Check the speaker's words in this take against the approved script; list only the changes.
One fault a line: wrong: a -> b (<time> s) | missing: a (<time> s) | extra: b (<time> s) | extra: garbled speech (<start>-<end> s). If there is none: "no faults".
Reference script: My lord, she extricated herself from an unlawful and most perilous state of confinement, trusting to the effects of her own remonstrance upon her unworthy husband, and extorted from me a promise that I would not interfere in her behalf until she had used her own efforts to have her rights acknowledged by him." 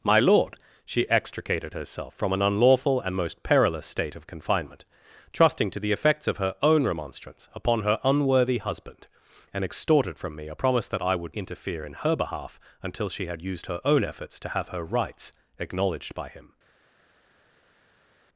missing: not (11.4 s)